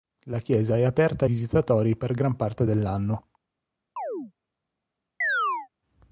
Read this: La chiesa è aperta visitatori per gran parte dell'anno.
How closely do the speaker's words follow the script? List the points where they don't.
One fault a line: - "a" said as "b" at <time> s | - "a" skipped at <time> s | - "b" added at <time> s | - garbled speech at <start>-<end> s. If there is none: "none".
none